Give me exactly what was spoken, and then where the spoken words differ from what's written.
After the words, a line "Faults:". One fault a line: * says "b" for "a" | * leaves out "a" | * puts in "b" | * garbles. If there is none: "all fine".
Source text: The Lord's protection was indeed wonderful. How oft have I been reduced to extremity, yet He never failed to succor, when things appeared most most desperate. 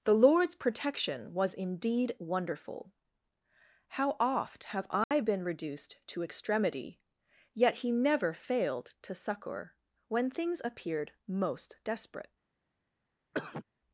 The Lord's protection was indeed wonderful. How oft have I been reduced to extremity, yet He never failed to succor, when things appeared most desperate.
Faults:
* leaves out "most"